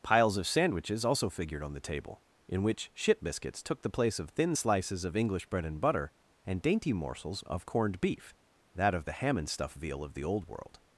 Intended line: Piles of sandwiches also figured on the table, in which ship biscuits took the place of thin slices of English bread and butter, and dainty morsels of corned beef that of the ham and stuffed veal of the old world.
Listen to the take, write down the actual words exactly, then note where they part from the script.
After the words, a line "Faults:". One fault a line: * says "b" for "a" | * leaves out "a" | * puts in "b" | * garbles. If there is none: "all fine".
Piles of sandwiches also figured on the table, in which ship biscuits took the place of thin slices of English bread and butter, and dainty morsels of corned beef that of the ham and stuff veal of the old world.
Faults:
* says "stuff" for "stuffed"